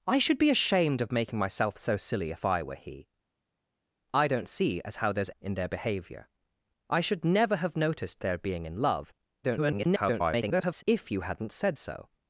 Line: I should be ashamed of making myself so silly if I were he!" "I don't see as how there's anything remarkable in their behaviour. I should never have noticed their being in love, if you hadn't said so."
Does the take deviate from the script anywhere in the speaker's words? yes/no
yes